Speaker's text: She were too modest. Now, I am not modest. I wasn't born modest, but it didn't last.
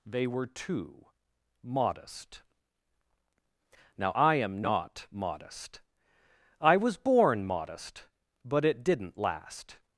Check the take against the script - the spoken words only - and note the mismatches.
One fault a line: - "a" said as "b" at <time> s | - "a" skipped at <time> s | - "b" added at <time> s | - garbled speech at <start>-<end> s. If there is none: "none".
- "She" said as "They" at 0.1 s
- "wasn't" said as "was" at 6.8 s